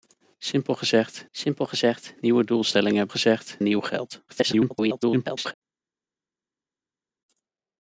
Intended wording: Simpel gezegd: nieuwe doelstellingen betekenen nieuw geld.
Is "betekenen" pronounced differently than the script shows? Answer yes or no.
yes